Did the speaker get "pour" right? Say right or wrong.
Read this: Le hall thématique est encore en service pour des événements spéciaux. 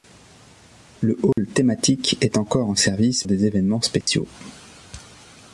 wrong